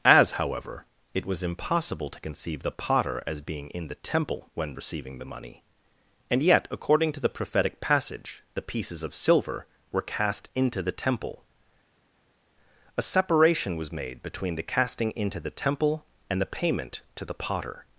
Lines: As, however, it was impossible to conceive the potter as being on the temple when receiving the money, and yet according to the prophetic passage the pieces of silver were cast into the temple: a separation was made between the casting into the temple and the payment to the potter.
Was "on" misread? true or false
true